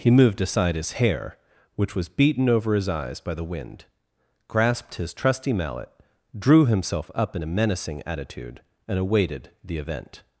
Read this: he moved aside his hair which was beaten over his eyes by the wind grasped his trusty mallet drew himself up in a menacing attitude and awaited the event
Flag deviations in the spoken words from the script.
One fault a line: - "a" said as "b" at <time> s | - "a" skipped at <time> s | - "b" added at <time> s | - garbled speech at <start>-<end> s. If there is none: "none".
none